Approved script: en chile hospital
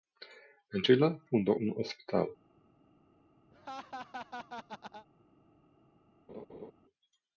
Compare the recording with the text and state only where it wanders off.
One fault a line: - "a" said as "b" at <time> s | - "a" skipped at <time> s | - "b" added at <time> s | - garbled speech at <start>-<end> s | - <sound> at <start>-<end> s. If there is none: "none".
- "fundó un" added at 1.3 s
- laugh at 3.5-5.1 s
- laugh at 6.3-6.7 s